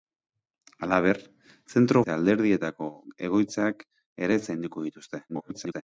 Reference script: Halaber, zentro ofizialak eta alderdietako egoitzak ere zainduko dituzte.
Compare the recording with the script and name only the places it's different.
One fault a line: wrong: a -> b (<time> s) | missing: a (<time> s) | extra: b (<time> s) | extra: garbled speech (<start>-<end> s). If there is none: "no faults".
missing: ofizialak (2.0 s)
extra: garbled speech (5.3-5.8 s)